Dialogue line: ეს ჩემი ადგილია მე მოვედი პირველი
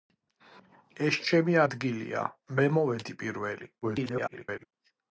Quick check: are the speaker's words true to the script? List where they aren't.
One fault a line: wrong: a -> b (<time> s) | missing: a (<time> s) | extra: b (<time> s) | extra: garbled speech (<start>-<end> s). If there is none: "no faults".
extra: garbled speech (3.8-4.7 s)